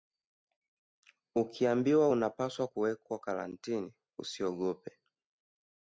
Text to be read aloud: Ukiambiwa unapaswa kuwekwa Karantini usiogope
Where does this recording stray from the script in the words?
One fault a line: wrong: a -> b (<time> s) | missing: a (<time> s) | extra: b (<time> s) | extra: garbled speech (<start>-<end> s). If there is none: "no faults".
no faults